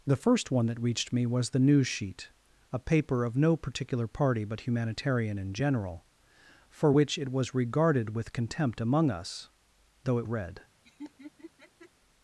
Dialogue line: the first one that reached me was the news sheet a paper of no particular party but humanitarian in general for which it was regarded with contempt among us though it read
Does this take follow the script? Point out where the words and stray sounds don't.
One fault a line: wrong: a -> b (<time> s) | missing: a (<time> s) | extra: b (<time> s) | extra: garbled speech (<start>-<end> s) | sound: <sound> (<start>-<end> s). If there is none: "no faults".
sound: laugh (10.8-11.9 s)